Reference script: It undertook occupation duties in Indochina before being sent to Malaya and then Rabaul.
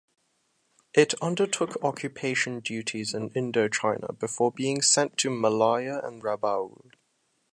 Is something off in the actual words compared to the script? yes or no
yes